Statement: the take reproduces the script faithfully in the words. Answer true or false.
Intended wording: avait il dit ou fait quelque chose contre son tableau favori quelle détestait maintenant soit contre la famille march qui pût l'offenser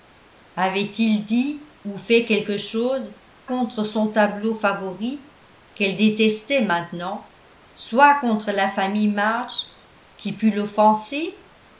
true